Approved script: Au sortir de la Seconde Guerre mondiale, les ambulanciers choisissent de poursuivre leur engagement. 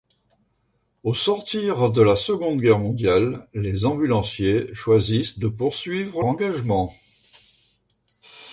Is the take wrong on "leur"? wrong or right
wrong